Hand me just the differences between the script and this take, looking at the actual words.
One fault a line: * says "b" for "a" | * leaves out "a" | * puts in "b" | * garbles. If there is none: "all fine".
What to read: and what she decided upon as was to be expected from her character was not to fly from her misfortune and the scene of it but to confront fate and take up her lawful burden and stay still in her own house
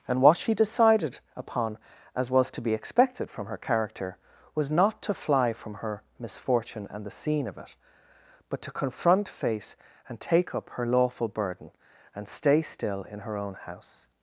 * says "face" for "fate"